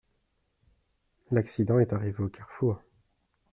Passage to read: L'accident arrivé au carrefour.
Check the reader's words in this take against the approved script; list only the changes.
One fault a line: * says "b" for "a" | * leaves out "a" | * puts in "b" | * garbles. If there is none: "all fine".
* puts in "est"